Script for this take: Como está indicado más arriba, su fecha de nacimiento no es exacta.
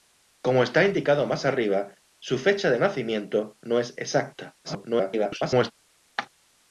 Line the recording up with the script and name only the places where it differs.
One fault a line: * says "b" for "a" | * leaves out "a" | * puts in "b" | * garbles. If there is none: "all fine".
* garbles